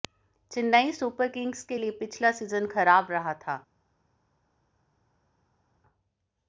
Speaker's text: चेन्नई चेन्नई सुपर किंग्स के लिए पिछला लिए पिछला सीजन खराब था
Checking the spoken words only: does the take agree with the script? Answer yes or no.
no